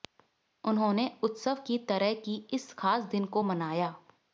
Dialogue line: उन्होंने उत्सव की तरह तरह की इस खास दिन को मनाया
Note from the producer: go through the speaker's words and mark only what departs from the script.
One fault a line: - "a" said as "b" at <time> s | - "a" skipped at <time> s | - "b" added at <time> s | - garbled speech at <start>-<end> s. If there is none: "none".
- "तरह" skipped at 2.1 s